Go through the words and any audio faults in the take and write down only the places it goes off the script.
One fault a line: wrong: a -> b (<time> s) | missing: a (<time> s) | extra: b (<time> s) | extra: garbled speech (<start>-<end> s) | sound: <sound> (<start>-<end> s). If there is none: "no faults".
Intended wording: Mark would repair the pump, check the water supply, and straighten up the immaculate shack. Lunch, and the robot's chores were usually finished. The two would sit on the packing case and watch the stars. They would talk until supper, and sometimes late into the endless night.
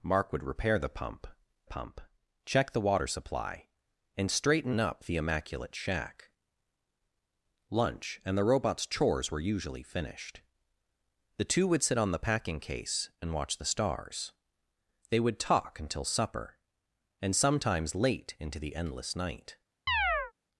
extra: pump (1.6 s)
sound: chirp (19.9-20.3 s)